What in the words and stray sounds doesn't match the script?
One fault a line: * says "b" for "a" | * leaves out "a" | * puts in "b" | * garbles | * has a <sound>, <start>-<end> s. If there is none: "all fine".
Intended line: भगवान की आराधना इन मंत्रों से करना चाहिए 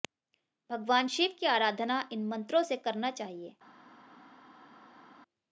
* puts in "शिव"